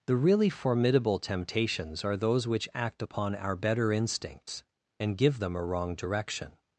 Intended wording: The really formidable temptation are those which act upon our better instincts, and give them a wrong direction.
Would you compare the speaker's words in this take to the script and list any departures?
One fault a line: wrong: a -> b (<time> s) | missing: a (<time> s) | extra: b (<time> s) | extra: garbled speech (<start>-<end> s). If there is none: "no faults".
wrong: temptation -> temptations (1.2 s)